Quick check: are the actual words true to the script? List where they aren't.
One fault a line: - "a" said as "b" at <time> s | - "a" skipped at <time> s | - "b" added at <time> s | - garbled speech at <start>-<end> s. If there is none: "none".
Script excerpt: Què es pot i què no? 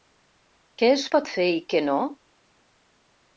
- "fer" added at 1.4 s